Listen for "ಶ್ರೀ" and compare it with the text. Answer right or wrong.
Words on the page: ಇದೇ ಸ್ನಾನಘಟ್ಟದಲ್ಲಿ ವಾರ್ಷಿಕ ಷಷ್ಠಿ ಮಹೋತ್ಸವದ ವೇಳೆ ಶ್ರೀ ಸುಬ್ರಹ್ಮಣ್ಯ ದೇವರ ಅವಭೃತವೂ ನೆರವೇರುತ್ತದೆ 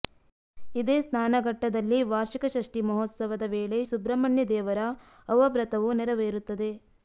wrong